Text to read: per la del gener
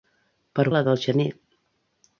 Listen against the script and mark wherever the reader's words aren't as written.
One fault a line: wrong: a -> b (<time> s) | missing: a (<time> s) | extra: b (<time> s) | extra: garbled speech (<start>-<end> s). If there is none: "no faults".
no faults